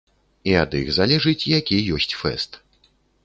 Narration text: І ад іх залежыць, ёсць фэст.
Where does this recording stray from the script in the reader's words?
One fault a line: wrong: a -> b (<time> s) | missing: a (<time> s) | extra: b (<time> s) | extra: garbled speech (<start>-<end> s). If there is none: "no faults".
extra: які (1.6 s)